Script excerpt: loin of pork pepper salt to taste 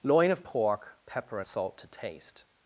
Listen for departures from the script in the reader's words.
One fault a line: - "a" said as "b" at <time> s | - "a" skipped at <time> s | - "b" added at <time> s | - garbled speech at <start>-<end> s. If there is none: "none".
none